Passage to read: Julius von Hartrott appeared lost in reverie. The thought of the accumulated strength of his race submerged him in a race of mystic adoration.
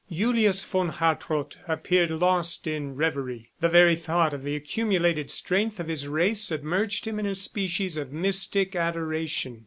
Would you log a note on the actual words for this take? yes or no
yes